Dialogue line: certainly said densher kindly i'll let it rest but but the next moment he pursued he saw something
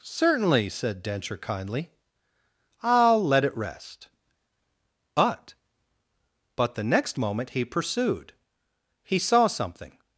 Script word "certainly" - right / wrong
right